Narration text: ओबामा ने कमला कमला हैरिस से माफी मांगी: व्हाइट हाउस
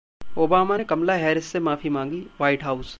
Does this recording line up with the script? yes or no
no